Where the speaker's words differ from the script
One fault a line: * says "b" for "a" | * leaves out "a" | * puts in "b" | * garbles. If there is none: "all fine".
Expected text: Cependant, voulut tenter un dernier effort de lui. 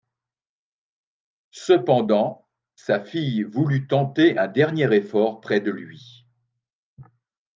* puts in "sa fille"
* puts in "près"